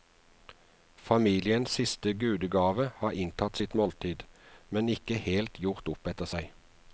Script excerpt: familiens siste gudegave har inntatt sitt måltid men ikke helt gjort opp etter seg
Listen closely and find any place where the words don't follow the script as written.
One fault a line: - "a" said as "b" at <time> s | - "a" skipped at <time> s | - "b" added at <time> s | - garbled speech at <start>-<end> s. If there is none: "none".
none